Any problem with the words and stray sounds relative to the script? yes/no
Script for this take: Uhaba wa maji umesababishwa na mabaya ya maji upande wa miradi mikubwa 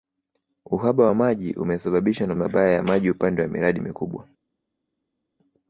no